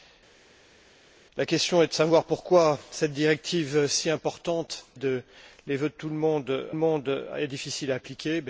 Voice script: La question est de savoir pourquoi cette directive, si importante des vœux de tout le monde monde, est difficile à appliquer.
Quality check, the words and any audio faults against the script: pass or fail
pass